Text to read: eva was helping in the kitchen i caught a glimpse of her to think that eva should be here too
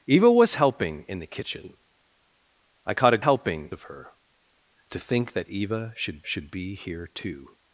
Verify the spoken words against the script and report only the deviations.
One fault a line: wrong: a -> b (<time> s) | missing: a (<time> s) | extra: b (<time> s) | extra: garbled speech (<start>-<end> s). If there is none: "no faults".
wrong: glimpse -> helping (3.2 s)
extra: should (6.2 s)